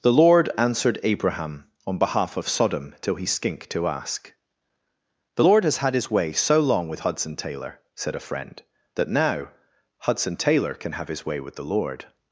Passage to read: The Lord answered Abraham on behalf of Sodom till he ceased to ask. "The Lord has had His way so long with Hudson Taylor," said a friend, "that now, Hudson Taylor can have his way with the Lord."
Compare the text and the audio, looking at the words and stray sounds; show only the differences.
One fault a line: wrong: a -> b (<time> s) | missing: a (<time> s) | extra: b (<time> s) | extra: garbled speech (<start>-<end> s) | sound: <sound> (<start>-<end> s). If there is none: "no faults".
wrong: ceased -> skink (3.3 s)